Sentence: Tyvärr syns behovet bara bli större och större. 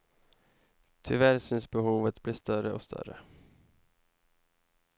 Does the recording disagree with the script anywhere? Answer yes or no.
yes